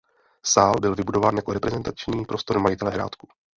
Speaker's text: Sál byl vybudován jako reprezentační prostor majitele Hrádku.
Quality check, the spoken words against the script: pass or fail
pass